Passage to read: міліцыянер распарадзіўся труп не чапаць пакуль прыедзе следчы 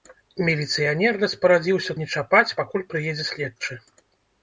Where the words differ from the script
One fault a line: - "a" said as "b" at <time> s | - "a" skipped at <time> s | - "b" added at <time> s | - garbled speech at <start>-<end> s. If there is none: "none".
- "труп" skipped at 1.9 s